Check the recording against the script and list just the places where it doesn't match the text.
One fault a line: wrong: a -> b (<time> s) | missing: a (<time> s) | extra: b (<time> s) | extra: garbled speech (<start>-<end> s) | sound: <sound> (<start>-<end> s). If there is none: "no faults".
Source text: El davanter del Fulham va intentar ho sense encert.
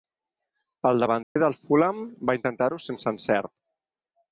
sound: dropout (1.2-1.4 s)